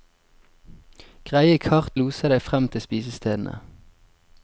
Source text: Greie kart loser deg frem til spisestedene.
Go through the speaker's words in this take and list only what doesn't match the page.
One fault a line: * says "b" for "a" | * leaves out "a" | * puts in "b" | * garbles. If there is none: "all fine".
all fine